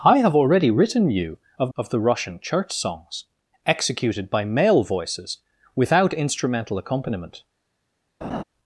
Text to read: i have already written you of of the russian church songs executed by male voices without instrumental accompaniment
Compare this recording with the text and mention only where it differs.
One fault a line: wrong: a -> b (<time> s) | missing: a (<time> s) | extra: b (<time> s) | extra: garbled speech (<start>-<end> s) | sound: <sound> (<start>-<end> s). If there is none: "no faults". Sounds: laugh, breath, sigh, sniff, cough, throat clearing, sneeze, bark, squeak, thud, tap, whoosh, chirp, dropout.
sound: laugh (8.2-8.4 s)